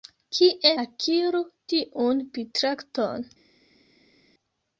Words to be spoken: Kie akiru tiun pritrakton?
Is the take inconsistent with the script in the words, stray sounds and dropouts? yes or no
no